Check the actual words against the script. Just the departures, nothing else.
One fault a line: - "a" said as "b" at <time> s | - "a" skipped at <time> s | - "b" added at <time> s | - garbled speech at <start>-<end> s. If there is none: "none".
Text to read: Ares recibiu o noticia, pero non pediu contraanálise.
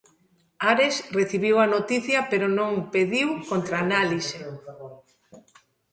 - "o" said as "a" at 1.6 s